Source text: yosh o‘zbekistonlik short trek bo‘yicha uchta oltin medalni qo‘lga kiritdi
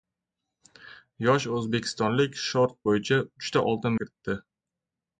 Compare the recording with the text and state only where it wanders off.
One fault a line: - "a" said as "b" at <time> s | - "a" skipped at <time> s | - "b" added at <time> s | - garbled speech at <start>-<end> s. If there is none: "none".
- "trek" skipped at 2.7 s
- "medalni qo‘lga" skipped at 4.0 s